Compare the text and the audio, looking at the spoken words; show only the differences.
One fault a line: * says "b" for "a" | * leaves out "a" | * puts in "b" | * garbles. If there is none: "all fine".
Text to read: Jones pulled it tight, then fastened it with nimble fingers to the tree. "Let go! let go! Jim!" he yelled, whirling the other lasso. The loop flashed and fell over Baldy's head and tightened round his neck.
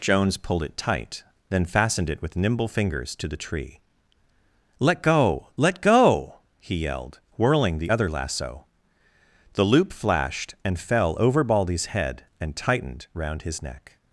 * leaves out "Jim"